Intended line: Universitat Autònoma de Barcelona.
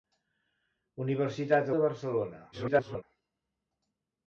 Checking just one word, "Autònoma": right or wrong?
wrong